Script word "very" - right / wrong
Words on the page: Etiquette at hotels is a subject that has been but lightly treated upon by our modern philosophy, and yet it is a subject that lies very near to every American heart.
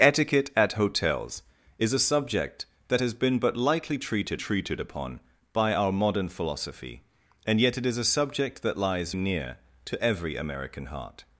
wrong